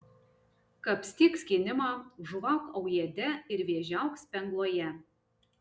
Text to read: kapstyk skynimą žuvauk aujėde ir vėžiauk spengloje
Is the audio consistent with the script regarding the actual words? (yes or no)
yes